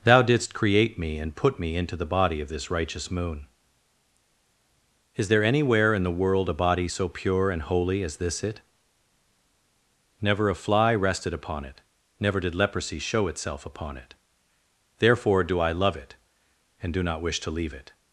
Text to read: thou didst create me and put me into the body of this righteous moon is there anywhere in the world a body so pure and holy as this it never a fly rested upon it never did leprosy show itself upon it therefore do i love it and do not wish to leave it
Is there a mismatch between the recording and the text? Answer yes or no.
no